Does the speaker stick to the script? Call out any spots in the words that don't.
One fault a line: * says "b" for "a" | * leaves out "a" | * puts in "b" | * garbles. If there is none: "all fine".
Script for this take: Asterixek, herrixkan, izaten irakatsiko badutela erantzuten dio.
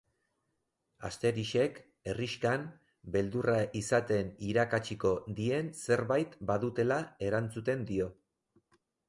* puts in "beldurra"
* puts in "dien zerbait"